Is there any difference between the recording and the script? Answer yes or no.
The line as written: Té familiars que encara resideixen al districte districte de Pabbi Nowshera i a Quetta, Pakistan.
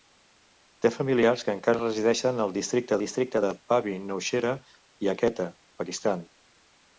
no